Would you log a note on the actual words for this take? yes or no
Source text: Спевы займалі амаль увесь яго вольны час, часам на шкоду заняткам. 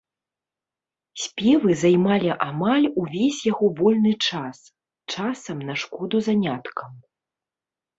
no